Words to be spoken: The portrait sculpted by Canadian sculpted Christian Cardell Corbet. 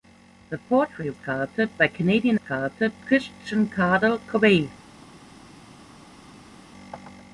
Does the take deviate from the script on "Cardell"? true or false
false